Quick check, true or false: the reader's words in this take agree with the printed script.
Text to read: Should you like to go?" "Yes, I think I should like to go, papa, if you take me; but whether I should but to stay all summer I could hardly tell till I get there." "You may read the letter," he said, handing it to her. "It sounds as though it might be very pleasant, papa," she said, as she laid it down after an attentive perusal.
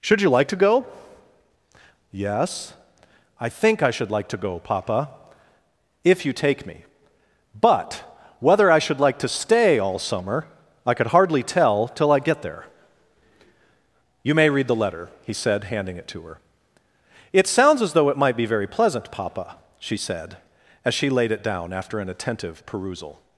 false